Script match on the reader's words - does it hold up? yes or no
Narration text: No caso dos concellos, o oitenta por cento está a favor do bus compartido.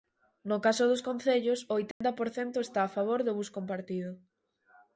yes